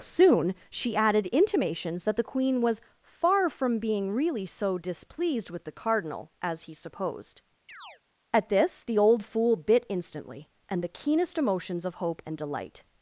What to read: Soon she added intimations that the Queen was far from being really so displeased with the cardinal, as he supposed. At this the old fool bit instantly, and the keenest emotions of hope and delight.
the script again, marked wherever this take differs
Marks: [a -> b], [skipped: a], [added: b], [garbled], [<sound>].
Soon she added intimations that the Queen was far from being really so displeased with the cardinal, as he supposed. [chirp] At this the old fool bit instantly, and the keenest emotions of hope and delight.